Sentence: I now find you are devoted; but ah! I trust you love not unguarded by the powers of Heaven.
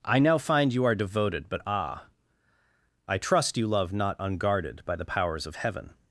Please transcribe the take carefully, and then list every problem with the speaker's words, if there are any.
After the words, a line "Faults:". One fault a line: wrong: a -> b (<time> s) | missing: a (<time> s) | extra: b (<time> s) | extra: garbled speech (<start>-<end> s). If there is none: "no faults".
I now find you are devoted; but ah! I trust you love not unguarded by the powers of Heaven.
Faults:
no faults